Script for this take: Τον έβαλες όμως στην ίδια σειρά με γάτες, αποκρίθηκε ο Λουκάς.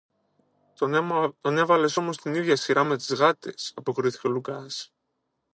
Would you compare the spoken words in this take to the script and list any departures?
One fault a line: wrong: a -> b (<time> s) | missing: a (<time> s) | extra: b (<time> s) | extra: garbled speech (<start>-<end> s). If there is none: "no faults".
extra: τις (3.0 s)